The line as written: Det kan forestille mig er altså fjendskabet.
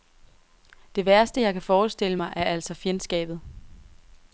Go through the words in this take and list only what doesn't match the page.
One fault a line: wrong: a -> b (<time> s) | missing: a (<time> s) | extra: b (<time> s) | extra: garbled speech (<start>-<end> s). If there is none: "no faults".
extra: værste jeg (1.1 s)